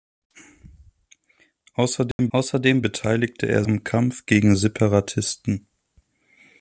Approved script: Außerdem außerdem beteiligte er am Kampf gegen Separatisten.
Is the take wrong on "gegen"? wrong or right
right